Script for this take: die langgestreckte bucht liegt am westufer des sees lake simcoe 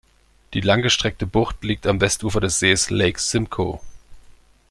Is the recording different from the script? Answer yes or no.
no